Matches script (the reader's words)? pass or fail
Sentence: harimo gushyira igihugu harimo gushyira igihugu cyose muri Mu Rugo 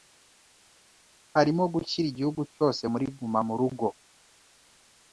fail